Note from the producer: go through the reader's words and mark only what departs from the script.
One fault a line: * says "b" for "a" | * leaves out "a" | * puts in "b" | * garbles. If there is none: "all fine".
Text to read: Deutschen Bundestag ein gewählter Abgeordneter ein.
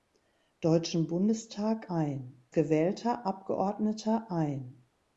all fine